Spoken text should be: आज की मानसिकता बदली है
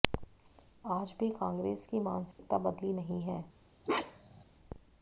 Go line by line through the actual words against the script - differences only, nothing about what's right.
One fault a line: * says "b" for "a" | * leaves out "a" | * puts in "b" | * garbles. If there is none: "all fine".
* puts in "भी कांग्रेस"
* puts in "नहीं"